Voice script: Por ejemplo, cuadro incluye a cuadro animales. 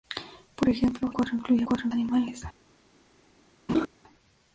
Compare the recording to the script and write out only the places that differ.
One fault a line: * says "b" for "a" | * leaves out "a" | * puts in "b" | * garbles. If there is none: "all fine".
all fine